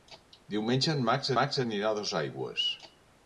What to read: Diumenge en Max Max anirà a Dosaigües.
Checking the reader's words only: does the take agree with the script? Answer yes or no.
yes